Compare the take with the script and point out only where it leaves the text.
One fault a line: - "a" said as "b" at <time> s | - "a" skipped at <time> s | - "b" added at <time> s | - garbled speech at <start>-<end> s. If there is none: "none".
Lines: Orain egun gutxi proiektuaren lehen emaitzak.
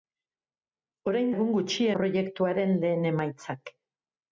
none